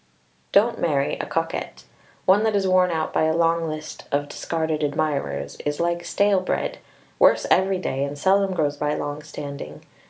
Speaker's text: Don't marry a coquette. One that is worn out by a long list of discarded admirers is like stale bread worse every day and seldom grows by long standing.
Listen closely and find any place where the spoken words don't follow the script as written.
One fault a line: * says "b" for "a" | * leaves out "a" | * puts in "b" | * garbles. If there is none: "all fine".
all fine